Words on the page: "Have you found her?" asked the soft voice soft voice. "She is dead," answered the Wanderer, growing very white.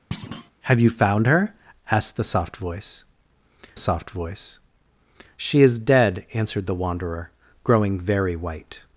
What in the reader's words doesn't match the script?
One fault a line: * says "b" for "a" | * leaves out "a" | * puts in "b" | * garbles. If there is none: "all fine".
all fine